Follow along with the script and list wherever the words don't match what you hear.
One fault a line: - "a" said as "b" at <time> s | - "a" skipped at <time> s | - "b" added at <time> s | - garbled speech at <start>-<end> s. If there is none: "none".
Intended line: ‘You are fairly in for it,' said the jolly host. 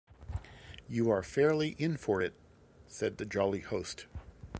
none